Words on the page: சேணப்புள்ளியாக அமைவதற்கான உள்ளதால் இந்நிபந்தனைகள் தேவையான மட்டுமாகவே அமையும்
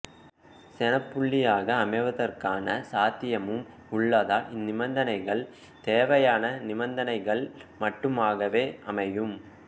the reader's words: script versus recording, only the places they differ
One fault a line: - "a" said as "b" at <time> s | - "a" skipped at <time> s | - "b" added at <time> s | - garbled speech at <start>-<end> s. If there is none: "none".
- "சாத்தியமும்" added at 2.9 s
- "நிபந்தனைகள்" added at 6.6 s